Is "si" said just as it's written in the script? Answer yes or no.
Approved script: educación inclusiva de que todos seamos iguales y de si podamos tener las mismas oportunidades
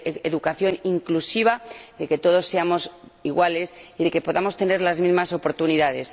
no